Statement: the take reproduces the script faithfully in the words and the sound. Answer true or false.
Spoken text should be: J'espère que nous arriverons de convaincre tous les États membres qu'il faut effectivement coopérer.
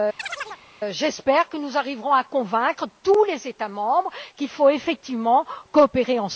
false